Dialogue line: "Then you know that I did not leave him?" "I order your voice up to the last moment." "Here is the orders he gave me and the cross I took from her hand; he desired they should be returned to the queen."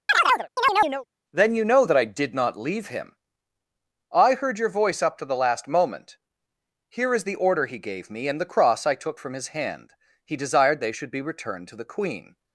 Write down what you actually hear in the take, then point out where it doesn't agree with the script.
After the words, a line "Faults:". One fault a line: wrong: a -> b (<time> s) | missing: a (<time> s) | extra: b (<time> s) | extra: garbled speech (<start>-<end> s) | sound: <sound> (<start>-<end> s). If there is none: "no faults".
"Then you know that I did not leave him?" "I heard your voice up to the last moment." "Here is the order he gave me and the cross I took from his hand; he desired they should be returned to the queen."
Faults:
sound: chirp (0.1-1.1 s)
wrong: order -> heard (4.3 s)
wrong: orders -> order (7.4 s)
wrong: her -> his (9.3 s)